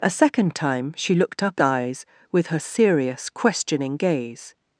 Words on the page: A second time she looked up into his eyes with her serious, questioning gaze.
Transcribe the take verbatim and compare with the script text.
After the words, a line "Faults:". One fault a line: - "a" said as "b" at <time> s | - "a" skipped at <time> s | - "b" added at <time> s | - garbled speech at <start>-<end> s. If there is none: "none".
A second time she looked up eyes with her serious, questioning gaze.
Faults:
- "into his" skipped at 1.6 s